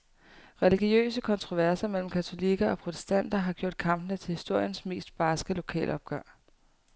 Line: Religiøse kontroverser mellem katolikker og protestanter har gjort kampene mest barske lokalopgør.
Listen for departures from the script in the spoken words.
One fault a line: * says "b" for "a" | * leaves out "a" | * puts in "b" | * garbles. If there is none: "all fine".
* puts in "til historiens"